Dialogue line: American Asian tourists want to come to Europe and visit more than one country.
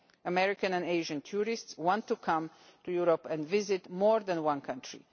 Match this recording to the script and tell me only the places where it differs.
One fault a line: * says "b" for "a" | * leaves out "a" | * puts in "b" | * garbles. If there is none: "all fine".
* puts in "and"